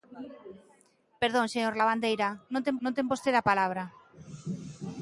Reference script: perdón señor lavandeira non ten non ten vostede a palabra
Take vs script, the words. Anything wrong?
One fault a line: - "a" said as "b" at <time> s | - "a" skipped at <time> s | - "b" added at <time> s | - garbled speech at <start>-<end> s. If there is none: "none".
none